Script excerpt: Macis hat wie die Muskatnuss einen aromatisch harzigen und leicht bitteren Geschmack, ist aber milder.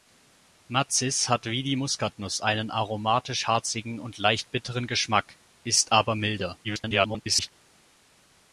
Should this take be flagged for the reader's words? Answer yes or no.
yes